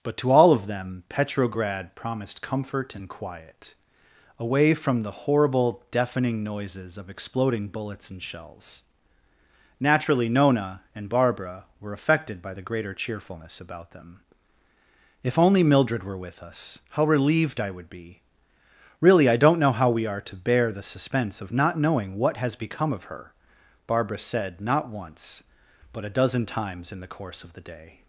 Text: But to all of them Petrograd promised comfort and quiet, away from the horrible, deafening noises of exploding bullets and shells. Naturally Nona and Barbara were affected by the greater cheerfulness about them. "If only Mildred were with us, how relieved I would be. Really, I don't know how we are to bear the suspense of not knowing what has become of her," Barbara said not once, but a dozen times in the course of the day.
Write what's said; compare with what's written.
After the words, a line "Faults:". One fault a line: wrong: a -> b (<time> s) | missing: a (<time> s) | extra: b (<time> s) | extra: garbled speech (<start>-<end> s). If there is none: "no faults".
But to all of them Petrograd promised comfort and quiet, away from the horrible, deafening noises of exploding bullets and shells. Naturally Nona and Barbara were affected by the greater cheerfulness about them. "If only Mildred were with us, how relieved I would be. Really, I don't know how we are to bear the suspense of not knowing what has become of her," Barbara said not once, but a dozen times in the course of the day.
Faults:
no faults